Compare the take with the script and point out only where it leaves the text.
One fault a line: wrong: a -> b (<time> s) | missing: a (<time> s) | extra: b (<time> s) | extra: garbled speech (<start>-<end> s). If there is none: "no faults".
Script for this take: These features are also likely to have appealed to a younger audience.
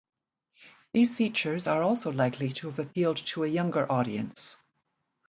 no faults